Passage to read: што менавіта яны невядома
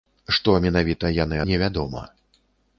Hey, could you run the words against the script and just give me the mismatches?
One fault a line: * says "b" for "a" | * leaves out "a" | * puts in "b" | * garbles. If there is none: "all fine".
all fine